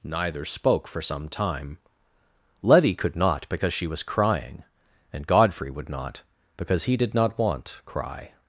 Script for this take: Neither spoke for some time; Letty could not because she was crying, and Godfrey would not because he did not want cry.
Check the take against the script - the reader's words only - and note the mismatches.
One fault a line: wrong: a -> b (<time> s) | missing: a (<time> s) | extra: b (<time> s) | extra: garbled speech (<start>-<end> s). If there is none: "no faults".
no faults